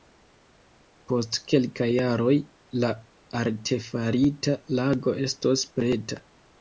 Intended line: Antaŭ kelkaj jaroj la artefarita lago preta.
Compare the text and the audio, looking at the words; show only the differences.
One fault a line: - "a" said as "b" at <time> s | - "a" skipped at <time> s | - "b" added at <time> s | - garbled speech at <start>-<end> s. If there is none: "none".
- "Antaŭ" said as "Post" at 1.1 s
- "estos" added at 5.3 s